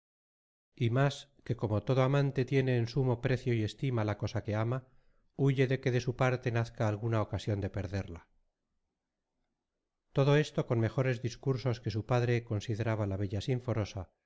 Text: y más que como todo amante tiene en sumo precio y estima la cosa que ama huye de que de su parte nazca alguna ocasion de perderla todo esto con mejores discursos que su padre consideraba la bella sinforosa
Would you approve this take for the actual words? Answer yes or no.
yes